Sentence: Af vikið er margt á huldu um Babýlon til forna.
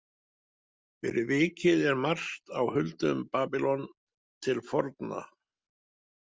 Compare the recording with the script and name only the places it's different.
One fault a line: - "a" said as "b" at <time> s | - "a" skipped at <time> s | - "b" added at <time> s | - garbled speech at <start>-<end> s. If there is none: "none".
- "Af" said as "Fyrir" at 1.1 s